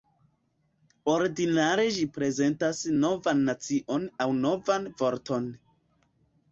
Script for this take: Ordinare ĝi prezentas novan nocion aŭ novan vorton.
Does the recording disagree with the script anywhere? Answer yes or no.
no